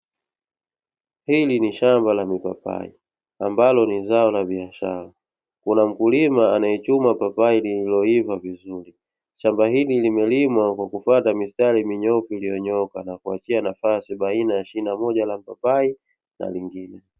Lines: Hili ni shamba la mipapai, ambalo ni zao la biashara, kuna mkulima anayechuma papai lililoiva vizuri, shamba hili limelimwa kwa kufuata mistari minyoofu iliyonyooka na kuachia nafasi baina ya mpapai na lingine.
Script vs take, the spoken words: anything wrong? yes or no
yes